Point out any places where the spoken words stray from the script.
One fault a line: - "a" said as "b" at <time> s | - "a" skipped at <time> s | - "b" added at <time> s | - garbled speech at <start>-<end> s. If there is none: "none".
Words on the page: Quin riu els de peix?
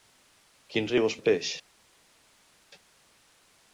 none